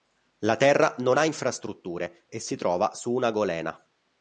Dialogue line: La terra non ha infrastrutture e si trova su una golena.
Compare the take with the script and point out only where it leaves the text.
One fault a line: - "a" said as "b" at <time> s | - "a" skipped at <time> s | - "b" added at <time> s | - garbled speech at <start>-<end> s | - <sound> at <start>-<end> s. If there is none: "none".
none